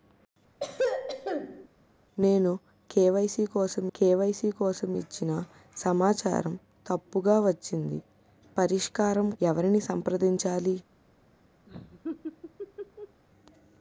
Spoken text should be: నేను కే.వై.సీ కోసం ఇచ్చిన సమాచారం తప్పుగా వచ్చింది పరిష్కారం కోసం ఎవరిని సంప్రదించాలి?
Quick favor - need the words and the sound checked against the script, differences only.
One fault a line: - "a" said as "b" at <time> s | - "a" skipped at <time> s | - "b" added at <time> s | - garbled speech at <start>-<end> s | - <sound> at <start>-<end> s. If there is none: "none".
- throat clearing at 0.6-1.7 s
- "కే.వై.సీ కోసం" added at 3.9 s
- "కోసం" skipped at 9.3 s
- laugh at 11.7-13.2 s